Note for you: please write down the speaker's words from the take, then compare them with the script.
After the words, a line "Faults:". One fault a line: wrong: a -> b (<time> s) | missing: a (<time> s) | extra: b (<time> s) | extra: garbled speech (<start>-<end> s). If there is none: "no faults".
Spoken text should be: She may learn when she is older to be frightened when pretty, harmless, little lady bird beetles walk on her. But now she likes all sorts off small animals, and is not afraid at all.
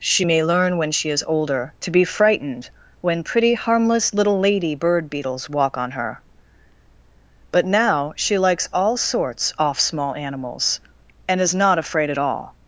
She may learn when she is older to be frightened when pretty, harmless, little lady bird beetles walk on her. But now she likes all sorts off small animals, and is not afraid at all.
Faults:
no faults